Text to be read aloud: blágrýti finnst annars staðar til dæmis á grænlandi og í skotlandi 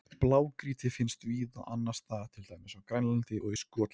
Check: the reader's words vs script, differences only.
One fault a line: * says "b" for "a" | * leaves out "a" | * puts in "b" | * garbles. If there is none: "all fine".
* puts in "víða"